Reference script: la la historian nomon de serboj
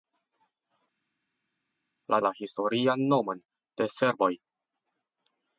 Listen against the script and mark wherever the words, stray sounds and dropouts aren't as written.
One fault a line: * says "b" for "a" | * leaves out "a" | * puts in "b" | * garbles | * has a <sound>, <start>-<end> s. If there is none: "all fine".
all fine